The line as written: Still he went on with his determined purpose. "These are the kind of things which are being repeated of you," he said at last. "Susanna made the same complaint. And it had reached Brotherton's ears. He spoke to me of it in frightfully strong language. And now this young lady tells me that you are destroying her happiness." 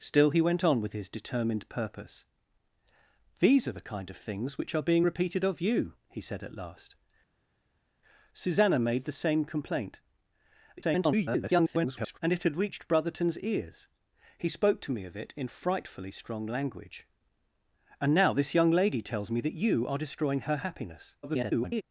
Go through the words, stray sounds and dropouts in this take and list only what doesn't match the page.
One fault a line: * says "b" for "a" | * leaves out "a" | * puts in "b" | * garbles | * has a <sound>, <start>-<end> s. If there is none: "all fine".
* garbles
* garbles